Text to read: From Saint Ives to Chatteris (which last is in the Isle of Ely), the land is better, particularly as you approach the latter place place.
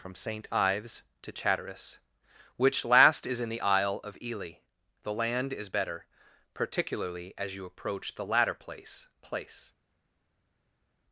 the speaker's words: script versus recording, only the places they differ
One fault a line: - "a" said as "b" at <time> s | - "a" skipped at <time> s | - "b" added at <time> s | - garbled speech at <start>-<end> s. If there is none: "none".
none